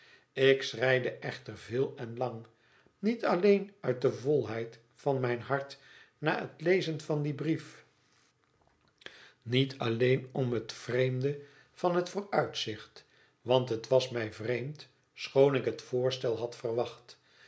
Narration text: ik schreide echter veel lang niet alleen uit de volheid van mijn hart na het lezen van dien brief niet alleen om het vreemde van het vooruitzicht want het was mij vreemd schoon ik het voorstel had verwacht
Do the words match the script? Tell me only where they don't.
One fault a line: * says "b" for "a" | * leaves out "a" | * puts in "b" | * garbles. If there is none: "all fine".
* puts in "en"